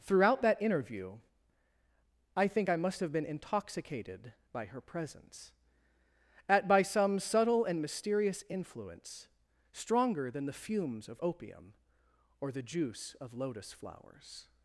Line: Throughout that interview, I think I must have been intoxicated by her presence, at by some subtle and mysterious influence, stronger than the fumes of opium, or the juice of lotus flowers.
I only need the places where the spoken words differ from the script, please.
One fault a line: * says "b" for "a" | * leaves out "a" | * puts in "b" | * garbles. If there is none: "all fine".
all fine